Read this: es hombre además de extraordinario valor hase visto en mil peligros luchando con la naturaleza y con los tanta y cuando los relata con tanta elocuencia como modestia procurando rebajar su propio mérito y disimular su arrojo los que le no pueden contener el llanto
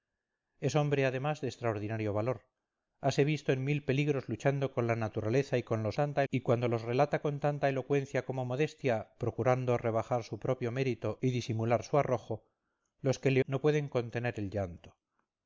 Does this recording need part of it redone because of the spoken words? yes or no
no